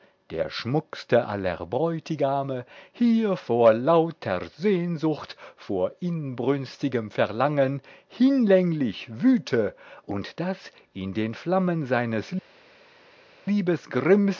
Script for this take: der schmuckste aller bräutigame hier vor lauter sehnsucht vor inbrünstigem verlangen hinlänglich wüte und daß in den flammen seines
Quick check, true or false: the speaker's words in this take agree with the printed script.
true